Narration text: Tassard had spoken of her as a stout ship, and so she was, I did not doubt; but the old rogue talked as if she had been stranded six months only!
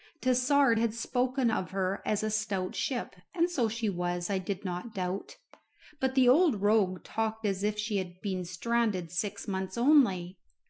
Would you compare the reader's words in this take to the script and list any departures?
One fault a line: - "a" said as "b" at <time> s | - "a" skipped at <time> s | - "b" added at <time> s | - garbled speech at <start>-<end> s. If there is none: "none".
none